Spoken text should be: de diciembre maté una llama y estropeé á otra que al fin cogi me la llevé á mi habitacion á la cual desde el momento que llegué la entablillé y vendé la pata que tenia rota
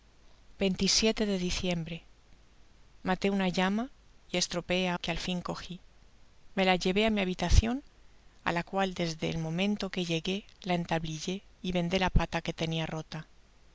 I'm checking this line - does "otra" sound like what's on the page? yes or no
no